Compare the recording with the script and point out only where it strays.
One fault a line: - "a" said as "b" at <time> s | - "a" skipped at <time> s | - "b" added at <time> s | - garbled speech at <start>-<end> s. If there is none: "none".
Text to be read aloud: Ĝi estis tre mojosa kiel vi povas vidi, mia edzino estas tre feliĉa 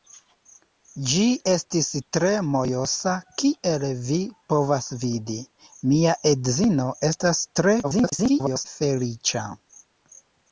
- garbled speech at 7.8-8.7 s